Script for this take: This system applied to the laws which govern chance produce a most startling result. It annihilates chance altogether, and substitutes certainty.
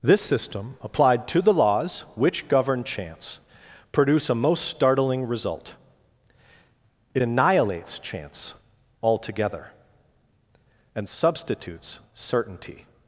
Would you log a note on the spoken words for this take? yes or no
no